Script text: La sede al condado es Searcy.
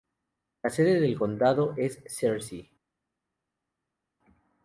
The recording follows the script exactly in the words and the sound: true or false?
false